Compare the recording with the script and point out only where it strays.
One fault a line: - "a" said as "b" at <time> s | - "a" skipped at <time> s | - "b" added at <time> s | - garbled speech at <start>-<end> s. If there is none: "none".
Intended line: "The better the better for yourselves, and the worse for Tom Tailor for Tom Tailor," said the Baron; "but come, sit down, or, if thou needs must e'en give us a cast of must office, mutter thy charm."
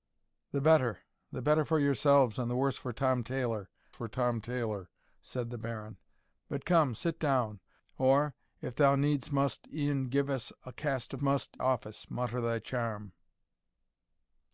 none